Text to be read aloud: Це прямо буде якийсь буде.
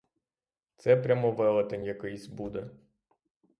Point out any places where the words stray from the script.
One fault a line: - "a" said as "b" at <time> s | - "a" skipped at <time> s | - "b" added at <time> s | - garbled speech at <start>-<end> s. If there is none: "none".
- "буде" said as "велетень" at 1.3 s